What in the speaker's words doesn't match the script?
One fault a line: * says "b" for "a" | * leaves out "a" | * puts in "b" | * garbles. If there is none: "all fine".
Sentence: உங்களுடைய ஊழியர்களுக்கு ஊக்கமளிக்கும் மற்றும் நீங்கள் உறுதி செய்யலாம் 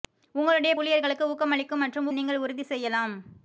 all fine